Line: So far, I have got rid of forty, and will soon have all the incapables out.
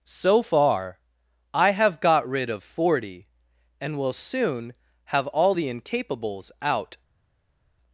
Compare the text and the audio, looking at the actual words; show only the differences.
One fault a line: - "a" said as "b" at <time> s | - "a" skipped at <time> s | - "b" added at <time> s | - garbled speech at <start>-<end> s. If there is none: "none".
none